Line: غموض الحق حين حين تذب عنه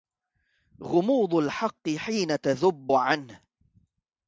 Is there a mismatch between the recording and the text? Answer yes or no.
yes